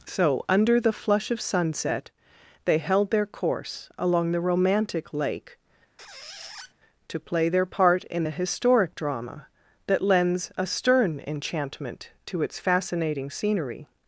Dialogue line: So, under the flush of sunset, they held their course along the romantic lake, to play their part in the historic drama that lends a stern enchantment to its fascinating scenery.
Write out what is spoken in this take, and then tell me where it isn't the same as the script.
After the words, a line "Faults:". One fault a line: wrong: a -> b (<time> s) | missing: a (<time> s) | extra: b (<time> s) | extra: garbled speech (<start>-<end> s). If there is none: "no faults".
So, under the flush of sunset, they held their course along the romantic lake, to play their part in the historic drama that lends a stern enchantment to its fascinating scenery.
Faults:
no faults